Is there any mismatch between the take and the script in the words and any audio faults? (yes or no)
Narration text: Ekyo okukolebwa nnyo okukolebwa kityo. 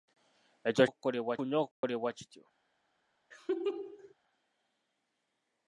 yes